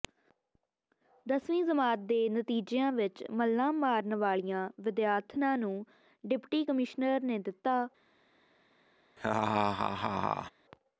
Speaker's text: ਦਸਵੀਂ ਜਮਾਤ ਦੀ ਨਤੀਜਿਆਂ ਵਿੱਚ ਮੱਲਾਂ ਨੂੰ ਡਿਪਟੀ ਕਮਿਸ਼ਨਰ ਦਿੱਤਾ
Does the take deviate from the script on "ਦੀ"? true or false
true